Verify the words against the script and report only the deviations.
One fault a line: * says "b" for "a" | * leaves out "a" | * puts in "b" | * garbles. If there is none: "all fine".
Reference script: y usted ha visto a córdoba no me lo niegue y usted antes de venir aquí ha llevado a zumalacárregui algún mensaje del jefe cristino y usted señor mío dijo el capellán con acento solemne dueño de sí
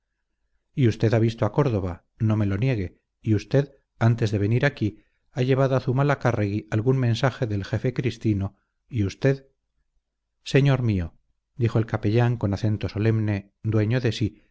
all fine